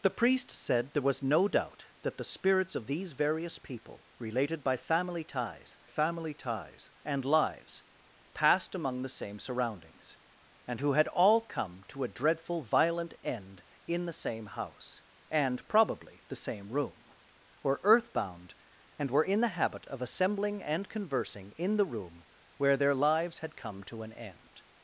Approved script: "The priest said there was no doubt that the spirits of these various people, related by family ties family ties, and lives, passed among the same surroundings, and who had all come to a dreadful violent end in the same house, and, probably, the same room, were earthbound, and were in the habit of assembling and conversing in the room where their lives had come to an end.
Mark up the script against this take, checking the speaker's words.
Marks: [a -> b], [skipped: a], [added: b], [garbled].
"The priest said there was no doubt that the spirits of these various people, related by family ties family ties, and lives, passed among the same surroundings, and who had all come to a dreadful violent end in the same house, and, probably, the same room, were earthbound, and were in the habit of assembling and conversing in the room where their lives had come to an end.